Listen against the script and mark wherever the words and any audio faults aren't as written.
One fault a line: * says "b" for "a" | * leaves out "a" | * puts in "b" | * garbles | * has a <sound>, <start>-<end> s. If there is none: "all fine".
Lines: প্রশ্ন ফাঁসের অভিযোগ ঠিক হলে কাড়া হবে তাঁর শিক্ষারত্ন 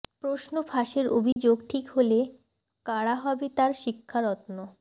* has a dropout, 1.3-1.4 s